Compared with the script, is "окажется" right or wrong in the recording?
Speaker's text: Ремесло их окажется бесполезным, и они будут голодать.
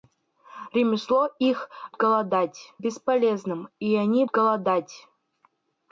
wrong